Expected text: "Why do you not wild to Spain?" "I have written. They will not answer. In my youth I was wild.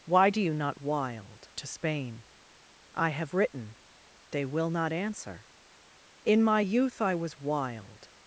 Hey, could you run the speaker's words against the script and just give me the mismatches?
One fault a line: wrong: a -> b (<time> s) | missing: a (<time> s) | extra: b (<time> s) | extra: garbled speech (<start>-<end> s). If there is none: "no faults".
no faults